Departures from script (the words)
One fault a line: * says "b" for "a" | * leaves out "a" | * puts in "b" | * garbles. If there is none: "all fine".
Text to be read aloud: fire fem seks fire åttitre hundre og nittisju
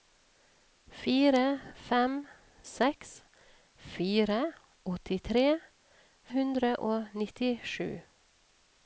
all fine